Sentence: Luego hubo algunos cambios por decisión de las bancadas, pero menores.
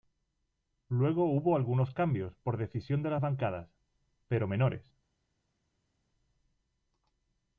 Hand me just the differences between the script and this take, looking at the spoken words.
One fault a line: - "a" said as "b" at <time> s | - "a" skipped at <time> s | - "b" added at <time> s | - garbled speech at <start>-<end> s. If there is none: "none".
none